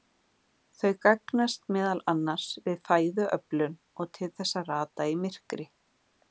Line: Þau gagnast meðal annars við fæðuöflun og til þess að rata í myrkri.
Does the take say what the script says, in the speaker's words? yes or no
yes